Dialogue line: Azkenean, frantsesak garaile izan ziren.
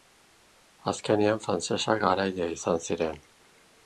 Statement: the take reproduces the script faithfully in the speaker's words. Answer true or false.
true